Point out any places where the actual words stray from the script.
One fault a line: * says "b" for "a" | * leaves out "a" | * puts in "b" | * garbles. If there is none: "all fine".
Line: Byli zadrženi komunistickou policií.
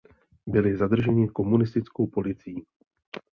all fine